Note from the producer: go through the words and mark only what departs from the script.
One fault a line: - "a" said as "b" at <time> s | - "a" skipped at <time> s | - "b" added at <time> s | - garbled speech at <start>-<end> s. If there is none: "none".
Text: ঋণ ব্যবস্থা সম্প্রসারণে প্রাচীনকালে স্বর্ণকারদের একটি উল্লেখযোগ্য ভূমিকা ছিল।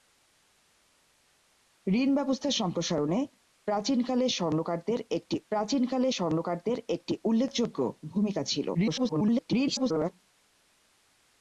- "প্রাচীনকালে স্বর্ণকারদের একটি" added at 5.5 s
- garbled speech at 8.7-10.1 s